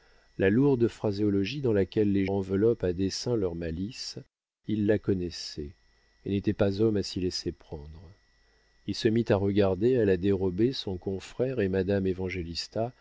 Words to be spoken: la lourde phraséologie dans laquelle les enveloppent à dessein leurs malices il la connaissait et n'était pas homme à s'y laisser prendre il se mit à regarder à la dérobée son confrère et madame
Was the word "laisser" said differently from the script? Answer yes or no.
no